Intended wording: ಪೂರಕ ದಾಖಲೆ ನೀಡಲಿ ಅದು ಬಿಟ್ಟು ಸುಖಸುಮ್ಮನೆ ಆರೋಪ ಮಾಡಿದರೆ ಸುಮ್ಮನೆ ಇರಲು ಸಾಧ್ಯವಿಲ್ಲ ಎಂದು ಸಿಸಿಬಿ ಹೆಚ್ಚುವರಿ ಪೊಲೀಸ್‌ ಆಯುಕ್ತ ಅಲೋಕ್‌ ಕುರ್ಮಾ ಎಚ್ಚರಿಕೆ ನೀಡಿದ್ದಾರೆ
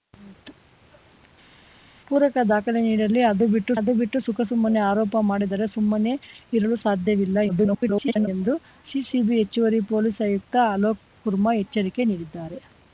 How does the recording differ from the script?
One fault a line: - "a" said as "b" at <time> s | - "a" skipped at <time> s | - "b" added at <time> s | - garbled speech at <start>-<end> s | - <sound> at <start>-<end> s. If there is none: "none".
- "ಅದು ಬಿಟ್ಟು" added at 3.8 s
- garbled speech at 7.5-8.3 s